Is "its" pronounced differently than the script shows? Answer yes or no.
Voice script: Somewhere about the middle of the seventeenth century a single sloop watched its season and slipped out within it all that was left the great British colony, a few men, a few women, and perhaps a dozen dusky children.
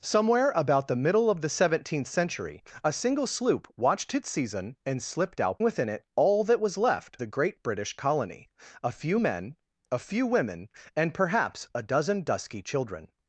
no